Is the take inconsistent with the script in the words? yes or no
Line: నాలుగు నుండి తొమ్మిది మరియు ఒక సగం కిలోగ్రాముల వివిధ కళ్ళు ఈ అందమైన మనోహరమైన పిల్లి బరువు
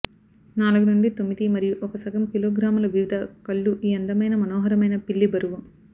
no